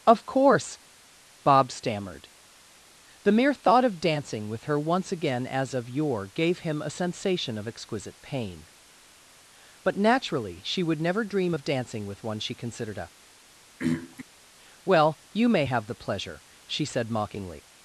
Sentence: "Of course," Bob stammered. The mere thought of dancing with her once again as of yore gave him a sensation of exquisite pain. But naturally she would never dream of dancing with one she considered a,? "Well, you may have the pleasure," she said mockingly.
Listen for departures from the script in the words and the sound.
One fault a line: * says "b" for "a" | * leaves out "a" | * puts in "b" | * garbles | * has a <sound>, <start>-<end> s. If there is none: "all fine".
* has a throat clearing, 13.8-14.2 s